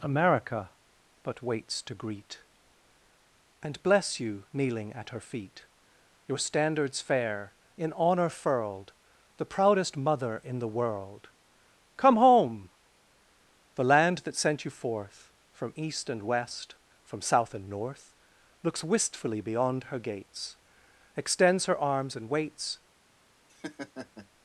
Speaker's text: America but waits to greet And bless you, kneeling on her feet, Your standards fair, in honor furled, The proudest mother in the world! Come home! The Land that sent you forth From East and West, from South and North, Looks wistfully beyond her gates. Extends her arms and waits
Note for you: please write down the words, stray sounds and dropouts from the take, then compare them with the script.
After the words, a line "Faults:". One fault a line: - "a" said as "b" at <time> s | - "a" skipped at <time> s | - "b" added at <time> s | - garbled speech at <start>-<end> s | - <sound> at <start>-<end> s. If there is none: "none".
America but waits to greet And bless you, kneeling at her feet, Your standards fair, in honor furled, The proudest mother in the world! Come home! The Land that sent you forth From East and West, from South and North, Looks wistfully beyond her gates. Extends her arms and waits
Faults:
- "on" said as "at" at 4.9 s
- laugh at 23.5-24.3 s